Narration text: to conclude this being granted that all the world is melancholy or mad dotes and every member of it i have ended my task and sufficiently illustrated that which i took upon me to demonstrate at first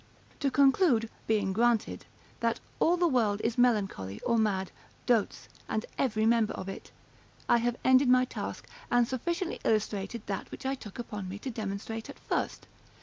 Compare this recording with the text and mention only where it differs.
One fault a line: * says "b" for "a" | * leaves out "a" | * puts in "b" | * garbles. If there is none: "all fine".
* leaves out "this"